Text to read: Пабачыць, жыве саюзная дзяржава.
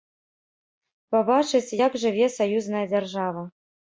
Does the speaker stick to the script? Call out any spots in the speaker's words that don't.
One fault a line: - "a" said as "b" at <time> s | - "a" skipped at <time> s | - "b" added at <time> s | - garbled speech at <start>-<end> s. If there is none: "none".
- "як" added at 1.8 s